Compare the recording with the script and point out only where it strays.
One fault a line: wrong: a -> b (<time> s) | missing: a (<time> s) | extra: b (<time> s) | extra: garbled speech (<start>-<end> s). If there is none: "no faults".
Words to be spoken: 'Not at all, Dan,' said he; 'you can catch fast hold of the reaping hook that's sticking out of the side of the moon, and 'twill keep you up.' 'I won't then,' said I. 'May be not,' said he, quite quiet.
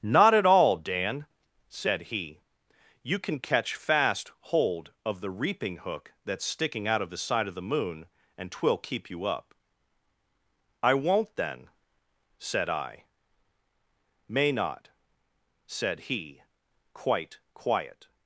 missing: be (14.5 s)